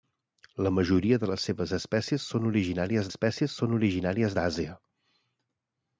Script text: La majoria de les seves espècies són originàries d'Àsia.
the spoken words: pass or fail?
fail